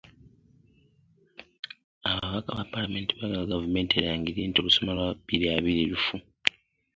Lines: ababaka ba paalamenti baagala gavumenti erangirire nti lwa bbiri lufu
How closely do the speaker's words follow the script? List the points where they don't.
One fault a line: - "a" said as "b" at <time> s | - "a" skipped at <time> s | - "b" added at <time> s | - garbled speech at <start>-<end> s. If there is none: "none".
- "olusoma" added at 4.6 s
- "abiri" added at 5.6 s